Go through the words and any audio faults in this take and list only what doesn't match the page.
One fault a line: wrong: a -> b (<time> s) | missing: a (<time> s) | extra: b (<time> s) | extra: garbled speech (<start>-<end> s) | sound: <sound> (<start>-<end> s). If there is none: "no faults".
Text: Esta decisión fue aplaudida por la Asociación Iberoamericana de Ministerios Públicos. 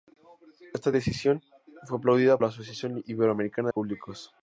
missing: por (2.4 s)
missing: de Ministerios (3.7 s)